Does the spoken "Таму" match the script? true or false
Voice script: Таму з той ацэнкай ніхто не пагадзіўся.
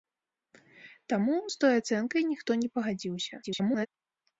true